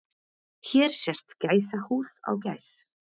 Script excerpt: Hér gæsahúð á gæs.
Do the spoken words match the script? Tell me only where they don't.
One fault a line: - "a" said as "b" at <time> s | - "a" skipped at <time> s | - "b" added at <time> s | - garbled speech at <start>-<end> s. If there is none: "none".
- "sést" added at 1.0 s